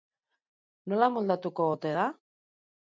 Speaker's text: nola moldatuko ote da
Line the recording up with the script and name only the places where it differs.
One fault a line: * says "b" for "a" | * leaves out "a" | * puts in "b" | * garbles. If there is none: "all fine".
all fine